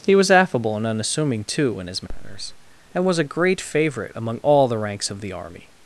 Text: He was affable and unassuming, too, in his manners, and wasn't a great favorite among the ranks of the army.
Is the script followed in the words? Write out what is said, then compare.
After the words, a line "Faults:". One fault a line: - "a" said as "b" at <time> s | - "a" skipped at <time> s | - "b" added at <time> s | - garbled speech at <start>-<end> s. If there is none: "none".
He was affable and unassuming, too, in his manners, and was a great favorite among all the ranks of the army.
Faults:
- "wasn't" said as "was" at 3.0 s
- "all" added at 4.4 s